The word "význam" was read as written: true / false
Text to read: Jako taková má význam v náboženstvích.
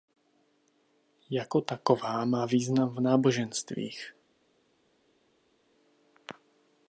true